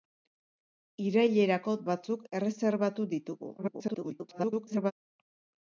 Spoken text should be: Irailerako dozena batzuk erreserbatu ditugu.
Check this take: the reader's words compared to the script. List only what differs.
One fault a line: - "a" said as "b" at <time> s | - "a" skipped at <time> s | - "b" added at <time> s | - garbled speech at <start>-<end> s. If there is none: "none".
- "dozena" skipped at 1.8 s
- garbled speech at 3.6-4.9 s